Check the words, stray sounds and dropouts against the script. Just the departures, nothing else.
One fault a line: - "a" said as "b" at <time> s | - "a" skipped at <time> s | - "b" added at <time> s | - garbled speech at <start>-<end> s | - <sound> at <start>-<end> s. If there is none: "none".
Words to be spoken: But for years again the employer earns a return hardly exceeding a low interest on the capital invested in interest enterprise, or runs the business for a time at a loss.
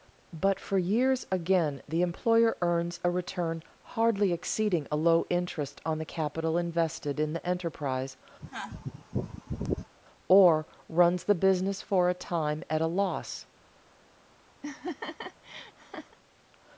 - "interest" said as "the" at 7.3 s
- sneeze at 8.4-9.9 s
- laugh at 14.6-16.2 s